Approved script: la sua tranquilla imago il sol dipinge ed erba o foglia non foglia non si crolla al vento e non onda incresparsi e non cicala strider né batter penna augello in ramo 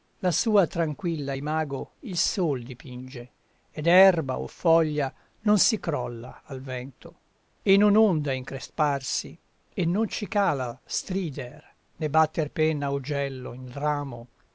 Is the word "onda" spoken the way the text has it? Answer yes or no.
yes